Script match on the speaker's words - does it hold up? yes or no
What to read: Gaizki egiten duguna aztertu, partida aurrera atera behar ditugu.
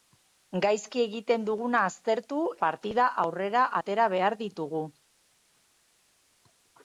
yes